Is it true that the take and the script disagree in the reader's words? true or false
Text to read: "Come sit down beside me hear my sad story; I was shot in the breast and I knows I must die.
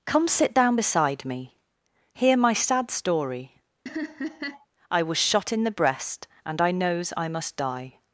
false